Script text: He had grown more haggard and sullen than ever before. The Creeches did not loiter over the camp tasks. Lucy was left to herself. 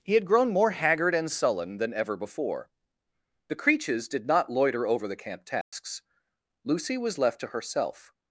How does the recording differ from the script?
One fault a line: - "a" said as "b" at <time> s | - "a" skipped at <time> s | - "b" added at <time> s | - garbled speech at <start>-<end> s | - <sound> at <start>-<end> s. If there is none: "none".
- dropout at 5.6-5.7 s